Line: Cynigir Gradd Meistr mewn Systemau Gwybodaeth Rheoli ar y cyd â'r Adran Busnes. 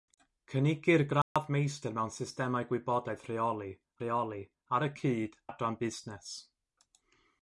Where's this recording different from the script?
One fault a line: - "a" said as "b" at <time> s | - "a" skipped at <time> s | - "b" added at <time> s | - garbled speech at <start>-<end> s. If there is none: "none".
- "Rheoli" added at 4.0 s
- "â'r" skipped at 5.4 s